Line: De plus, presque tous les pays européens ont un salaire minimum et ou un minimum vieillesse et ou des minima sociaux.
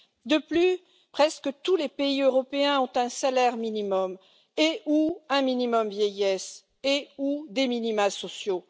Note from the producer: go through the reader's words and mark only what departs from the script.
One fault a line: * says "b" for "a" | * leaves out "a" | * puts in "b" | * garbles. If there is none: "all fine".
all fine